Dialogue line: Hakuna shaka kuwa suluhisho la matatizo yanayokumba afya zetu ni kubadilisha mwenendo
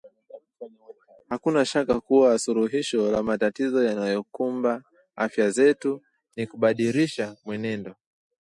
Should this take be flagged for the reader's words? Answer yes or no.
no